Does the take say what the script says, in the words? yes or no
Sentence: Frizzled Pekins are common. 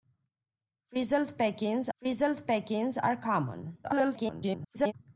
no